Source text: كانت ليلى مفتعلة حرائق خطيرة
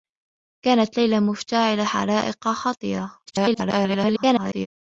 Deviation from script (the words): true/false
true